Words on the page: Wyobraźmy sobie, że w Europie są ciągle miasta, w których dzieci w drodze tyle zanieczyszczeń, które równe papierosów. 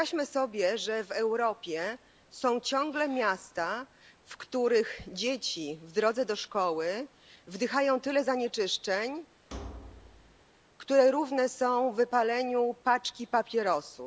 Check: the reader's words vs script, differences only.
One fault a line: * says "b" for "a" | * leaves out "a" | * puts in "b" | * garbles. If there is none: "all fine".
* puts in "do szkoły wdychają"
* puts in "są wypaleniu paczki"